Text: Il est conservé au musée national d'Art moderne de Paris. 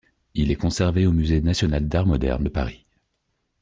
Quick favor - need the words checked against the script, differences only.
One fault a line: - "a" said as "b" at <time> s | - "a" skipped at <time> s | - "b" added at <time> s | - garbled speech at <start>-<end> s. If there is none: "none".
none